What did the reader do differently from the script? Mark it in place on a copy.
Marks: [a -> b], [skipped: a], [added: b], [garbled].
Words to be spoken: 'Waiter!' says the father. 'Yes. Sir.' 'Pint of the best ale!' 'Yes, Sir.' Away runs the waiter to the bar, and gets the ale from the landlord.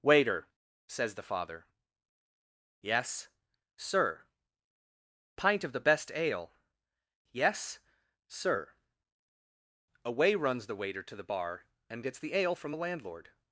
'Waiter!' says the father. 'Yes. Sir.' 'Pint of the best ale!' 'Yes, Sir.' Away runs the waiter to the bar, and gets the ale from the landlord.